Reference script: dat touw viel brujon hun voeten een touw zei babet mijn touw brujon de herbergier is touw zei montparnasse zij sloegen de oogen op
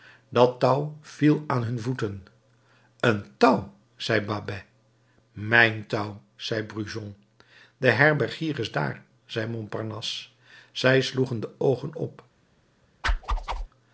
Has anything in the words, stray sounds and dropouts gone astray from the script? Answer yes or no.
yes